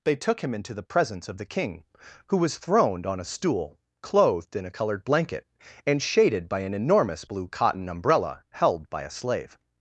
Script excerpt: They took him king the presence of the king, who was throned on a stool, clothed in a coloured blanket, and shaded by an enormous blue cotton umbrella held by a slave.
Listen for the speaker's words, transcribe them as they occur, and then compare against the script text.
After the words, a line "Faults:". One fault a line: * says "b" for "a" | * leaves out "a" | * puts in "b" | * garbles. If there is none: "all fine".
They took him into the presence of the king, who was throned on a stool, clothed in a coloured blanket, and shaded by an enormous blue cotton umbrella held by a slave.
Faults:
* says "into" for "king"